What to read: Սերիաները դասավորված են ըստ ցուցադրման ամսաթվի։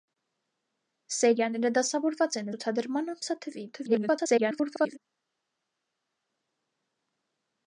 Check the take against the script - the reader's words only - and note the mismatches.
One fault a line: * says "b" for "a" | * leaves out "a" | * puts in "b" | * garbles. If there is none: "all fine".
* leaves out "ըստ"
* garbles